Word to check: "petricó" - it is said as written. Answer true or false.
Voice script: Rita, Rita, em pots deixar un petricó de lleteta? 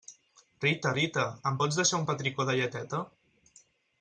true